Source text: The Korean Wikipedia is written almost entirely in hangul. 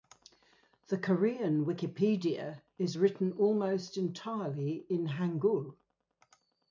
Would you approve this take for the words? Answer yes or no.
yes